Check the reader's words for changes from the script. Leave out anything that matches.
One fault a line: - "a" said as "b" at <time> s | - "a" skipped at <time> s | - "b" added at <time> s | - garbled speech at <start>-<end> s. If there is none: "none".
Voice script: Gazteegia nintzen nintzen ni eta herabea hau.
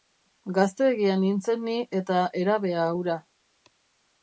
- "nintzen" skipped at 1.6 s
- "hau" said as "hura" at 3.0 s